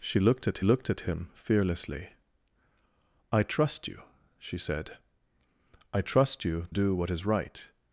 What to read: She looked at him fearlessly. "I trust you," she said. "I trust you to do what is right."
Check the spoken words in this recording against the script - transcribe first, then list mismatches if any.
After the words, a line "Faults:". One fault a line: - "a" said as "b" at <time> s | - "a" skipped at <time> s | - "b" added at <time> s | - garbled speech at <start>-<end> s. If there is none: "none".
She looked at looked at him fearlessly. "I trust you," she said. "I trust you do what is right."
Faults:
- "looked at" added at 0.6 s
- "to" skipped at 6.7 s